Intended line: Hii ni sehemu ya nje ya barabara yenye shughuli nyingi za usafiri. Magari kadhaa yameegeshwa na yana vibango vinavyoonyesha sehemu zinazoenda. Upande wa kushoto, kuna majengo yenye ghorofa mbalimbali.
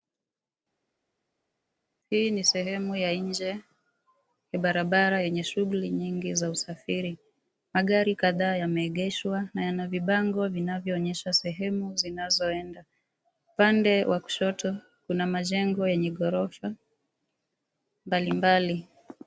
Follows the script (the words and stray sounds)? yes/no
yes